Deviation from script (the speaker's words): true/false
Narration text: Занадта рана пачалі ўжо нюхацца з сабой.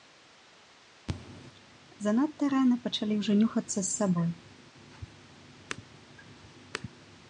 false